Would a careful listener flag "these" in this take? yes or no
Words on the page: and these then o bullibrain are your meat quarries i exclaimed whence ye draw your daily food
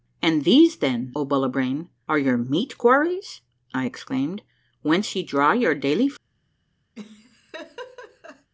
no